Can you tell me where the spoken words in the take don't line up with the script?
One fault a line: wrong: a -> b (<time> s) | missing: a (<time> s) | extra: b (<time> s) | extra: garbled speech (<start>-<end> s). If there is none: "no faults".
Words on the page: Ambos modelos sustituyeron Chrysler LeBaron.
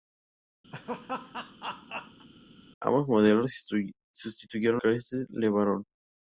no faults